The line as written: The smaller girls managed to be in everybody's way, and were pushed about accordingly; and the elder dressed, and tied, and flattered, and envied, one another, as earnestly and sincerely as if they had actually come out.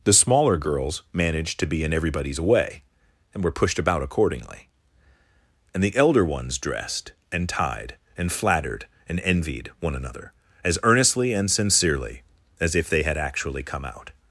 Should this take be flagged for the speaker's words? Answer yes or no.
yes